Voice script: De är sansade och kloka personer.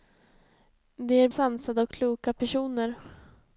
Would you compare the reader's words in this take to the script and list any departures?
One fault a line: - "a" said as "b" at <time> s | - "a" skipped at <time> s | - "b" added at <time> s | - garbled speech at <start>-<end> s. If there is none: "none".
none